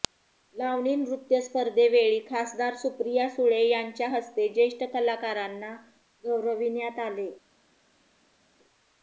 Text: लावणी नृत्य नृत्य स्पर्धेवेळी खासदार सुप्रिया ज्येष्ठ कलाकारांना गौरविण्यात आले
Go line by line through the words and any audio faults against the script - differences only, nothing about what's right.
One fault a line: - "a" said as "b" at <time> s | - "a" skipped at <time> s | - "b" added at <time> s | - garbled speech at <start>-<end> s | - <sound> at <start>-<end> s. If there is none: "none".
- "नृत्य" skipped at 1.4 s
- "सुळे यांच्या हस्ते" added at 3.3 s